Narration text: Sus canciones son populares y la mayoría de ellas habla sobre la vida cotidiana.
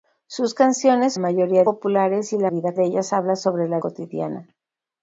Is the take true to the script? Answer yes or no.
no